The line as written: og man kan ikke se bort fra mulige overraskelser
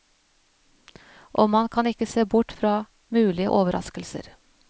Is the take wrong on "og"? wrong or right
right